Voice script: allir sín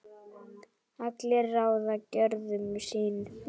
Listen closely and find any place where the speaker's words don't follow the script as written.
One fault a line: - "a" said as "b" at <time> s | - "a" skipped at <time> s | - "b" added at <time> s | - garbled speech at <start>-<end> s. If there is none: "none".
- "ráða gjörðum" added at 1.6 s